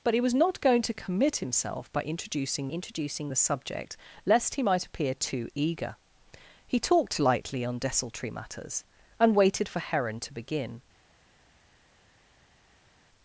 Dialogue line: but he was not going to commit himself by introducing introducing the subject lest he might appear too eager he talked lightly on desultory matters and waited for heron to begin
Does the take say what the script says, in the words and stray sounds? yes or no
yes